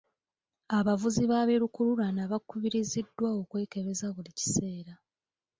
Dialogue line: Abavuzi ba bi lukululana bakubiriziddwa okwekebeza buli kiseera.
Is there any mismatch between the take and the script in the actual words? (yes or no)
no